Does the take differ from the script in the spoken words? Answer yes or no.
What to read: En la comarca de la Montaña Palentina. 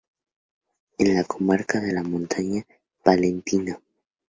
no